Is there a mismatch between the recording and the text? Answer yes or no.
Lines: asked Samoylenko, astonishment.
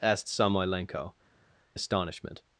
no